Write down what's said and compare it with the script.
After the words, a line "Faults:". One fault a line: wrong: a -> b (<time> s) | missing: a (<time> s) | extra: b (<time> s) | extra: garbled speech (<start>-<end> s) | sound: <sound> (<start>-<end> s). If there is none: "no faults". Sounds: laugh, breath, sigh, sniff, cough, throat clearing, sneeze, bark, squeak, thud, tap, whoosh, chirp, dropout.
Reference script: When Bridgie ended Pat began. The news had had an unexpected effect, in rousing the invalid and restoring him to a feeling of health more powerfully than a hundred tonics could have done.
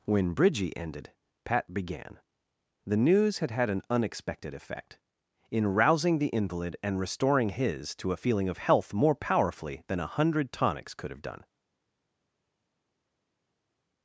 When Bridgie ended Pat began. The news had had an unexpected effect, in rousing the invalid and restoring his to a feeling of health more powerfully than a hundred tonics could have done.
Faults:
wrong: him -> his (7.5 s)